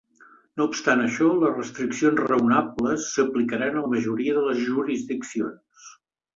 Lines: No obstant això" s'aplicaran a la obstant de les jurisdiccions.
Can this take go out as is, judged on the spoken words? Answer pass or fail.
fail